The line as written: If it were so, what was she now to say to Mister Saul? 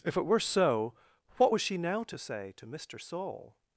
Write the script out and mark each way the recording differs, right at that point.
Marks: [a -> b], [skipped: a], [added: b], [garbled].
If it were so, what was she now to say to Mister Saul?